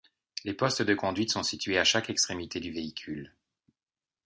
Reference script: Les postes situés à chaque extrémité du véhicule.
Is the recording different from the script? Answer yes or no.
yes